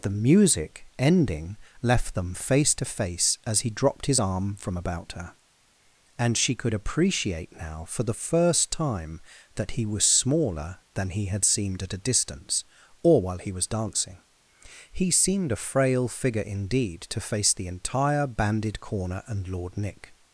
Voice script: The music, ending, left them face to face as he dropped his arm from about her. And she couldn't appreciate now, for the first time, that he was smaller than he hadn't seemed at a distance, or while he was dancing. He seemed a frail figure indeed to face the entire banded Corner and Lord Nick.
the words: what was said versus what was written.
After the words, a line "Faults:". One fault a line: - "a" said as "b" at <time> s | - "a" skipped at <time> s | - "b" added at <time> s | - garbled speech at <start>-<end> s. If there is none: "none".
The music, ending, left them face to face as he dropped his arm from about her. And she could appreciate now, for the first time, that he was smaller than he had seemed at a distance, or while he was dancing. He seemed a frail figure indeed to face the entire banded Corner and Lord Nick.
Faults:
- "couldn't" said as "could" at 6.6 s
- "hadn't" said as "had" at 11.3 s